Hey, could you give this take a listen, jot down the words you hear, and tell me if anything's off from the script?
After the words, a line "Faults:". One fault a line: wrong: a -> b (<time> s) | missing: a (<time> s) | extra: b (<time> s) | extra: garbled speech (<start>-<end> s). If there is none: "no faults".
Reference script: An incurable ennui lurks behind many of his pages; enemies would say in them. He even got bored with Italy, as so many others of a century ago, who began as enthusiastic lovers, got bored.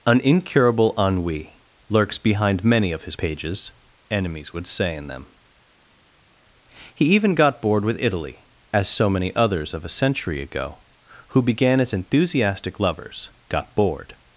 An incurable ennui lurks behind many of his pages; enemies would say in them. He even got bored with Italy, as so many others of a century ago, who began as enthusiastic lovers, got bored.
Faults:
no faults